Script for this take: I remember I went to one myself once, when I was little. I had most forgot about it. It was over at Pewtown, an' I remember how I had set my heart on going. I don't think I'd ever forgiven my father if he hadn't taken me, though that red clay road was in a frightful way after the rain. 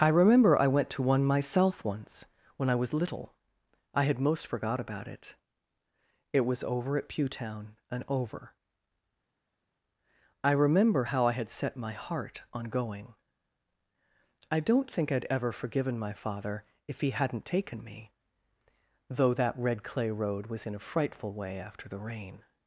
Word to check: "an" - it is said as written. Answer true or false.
false